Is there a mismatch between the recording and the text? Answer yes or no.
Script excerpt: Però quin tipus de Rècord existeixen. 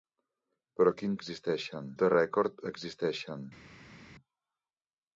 yes